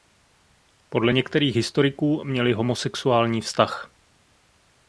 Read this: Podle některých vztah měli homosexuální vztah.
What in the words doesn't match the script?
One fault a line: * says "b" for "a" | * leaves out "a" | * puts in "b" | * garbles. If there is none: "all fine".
* says "historiků" for "vztah"